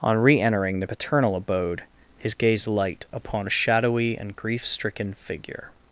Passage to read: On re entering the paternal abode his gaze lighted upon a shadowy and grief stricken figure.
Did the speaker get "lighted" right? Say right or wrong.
wrong